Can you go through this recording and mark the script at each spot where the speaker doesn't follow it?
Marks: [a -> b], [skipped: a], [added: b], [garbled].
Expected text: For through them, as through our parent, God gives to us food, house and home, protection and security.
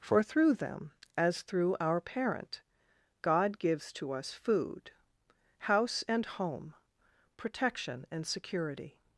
For through them, as through our parent, God gives to us food, house and home, protection and security.